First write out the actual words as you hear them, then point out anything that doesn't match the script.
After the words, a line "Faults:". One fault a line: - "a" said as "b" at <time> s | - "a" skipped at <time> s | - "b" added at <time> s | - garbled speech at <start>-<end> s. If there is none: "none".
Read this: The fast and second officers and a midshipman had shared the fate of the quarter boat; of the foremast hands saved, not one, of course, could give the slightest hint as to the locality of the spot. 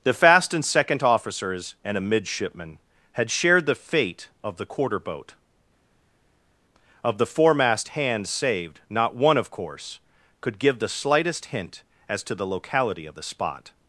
The fast and second officers and a midshipman had shared the fate of the quarter boat; of the foremast hands saved, not one, of course, could give the slightest hint as to the locality of the spot.
Faults:
none